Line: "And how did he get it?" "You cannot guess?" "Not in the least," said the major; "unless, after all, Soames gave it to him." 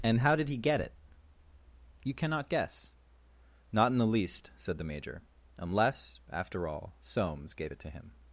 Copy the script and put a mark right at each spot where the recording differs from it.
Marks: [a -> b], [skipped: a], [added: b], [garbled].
"And how did he get it?" "You cannot guess?" "Not in the least," said the major; "unless, after all, Soames gave it to him."